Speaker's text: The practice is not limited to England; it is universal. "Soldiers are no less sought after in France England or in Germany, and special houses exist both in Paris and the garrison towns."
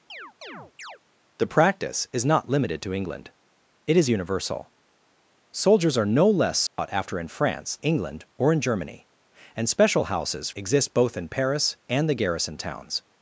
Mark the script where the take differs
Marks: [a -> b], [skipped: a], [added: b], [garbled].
The practice is not limited to England; it is universal. "Soldiers are no less sought after in France England or in Germany, and special houses exist both in Paris and the garrison towns."